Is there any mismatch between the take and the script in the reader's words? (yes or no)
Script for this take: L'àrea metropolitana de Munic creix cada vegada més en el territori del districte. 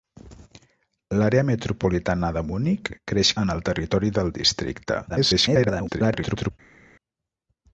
yes